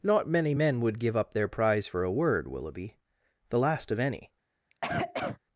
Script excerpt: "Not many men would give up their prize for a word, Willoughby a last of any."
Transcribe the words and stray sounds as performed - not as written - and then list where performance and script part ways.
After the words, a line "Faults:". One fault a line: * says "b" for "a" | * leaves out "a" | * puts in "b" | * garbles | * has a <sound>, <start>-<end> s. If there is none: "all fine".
"Not many men would give up their prize for a word, Willoughby the last of any."
Faults:
* says "the" for "a"
* has a cough, 4.7-5.4 s